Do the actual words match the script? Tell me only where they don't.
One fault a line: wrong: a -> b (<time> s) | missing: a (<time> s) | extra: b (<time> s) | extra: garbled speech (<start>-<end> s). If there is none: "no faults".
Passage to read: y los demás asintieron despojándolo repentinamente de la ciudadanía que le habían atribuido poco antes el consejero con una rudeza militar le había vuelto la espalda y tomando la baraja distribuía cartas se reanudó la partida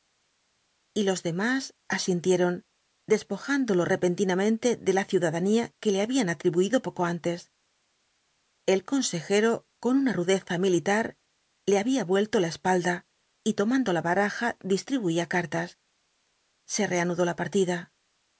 no faults